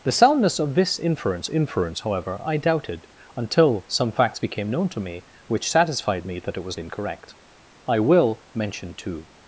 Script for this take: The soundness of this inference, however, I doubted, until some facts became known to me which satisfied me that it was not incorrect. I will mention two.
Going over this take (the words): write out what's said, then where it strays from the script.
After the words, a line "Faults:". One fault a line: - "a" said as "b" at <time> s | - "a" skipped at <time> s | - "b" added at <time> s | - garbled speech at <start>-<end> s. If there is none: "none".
The soundness of this inference inference, however, I doubted, until some facts became known to me which satisfied me that it was incorrect. I will mention two.
Faults:
- "inference" added at 1.5 s
- "not" skipped at 6.8 s